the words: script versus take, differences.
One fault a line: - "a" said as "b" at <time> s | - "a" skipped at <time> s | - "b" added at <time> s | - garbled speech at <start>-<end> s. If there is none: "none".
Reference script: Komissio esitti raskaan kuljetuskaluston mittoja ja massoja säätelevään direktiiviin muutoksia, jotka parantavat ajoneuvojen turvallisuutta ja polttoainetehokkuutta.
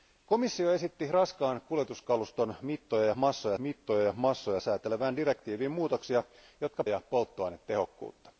- "mittoja ja massoja" added at 3.6 s
- "parantavat ajoneuvojen turvallisuutta" skipped at 6.8 s